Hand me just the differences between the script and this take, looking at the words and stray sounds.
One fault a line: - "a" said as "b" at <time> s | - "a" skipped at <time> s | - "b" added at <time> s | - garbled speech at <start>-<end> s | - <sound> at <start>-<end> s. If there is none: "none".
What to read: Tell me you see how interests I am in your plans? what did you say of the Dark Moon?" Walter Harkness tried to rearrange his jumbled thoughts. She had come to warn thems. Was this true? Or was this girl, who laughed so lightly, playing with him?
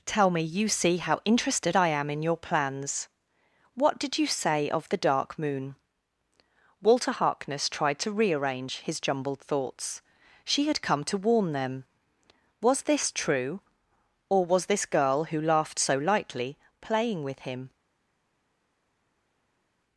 - "interests" said as "interested" at 1.3 s
- "thems" said as "them" at 11.5 s